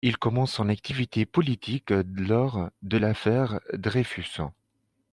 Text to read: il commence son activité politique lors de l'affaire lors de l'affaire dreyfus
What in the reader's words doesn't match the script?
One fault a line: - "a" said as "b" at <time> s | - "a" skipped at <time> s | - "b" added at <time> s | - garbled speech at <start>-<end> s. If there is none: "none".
- "lors de l'affaire" skipped at 3.6 s